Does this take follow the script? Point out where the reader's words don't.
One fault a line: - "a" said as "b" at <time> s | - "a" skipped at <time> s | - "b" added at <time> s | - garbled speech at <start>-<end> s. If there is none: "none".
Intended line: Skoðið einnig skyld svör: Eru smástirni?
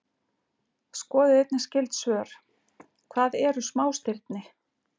- "Hvað" added at 3.2 s